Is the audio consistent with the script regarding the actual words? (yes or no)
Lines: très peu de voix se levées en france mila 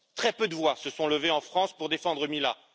no